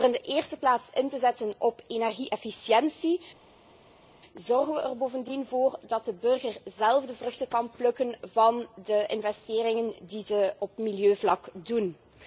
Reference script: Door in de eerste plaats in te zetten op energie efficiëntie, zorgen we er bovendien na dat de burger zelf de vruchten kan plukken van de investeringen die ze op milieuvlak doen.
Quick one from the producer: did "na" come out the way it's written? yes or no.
no